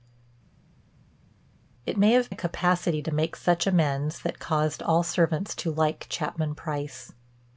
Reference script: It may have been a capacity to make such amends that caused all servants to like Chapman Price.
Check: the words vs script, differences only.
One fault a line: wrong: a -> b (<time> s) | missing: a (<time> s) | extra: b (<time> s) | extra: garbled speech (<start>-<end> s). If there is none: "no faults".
missing: been (2.3 s)